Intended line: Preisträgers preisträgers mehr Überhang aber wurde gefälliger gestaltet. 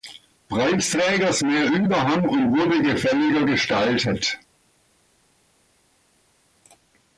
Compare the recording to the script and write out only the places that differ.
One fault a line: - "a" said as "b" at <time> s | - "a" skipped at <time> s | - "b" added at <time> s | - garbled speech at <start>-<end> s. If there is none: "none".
- "preisträgers" skipped at 1.4 s
- "aber" said as "und" at 2.3 s